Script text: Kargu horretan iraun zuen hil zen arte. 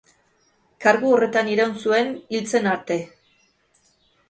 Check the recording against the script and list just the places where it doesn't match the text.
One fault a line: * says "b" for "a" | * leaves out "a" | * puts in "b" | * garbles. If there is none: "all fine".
all fine